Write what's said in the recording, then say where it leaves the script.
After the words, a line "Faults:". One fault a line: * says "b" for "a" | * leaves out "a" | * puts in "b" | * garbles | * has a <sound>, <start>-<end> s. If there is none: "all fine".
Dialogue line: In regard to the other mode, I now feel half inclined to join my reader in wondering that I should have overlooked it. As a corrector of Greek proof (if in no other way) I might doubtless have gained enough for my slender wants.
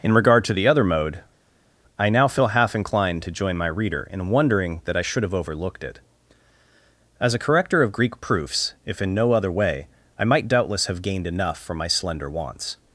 In regard to the other mode, I now feel half inclined to join my reader in wondering that I should have overlooked it. As a corrector of Greek proofs (if in no other way) I might doubtless have gained enough for my slender wants.
Faults:
* says "proofs" for "proof"